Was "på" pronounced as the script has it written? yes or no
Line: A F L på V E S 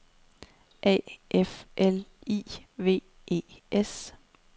no